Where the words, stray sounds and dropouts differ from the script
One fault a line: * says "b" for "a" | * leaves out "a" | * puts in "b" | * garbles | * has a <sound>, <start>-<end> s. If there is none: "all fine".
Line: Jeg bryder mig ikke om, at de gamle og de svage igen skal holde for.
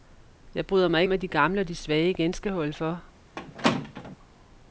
* leaves out "ikke"
* has a squeak, 3.4-4.2 s